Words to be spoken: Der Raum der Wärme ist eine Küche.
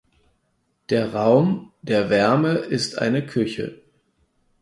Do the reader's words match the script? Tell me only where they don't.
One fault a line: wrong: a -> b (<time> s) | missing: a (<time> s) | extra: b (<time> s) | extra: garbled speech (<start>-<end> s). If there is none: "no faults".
no faults